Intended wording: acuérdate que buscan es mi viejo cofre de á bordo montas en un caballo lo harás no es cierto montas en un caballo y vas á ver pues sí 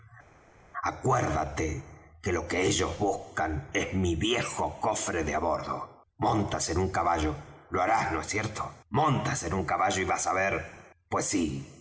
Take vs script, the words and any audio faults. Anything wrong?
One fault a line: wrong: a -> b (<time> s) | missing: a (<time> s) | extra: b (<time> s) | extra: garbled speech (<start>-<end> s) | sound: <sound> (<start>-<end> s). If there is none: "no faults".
extra: lo que ellos (2.3 s)